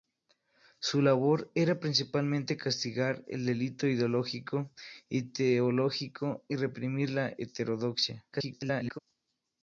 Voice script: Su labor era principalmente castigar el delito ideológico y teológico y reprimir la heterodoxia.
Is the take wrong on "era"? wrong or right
right